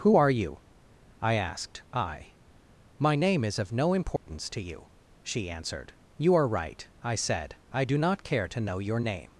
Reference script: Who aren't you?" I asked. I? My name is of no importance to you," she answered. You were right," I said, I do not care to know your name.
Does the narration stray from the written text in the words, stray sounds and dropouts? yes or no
yes